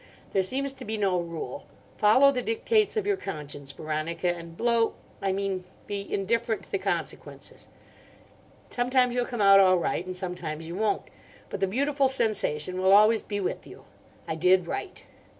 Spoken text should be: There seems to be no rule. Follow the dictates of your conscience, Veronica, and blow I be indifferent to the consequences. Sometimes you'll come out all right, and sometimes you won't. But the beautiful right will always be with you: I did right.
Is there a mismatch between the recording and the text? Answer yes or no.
yes